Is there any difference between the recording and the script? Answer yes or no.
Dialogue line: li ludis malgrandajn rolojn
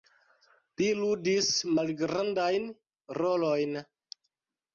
no